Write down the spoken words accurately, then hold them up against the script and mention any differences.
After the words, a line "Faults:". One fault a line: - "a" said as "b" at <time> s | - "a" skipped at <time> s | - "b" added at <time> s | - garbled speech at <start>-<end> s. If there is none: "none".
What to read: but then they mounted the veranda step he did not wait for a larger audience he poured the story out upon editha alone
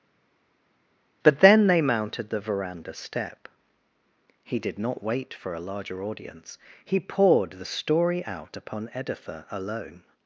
but then they mounted the veranda step he did not wait for a larger audience he poured the story out upon editha alone
Faults:
none